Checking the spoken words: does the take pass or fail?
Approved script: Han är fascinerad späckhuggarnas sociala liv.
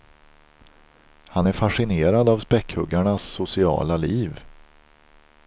fail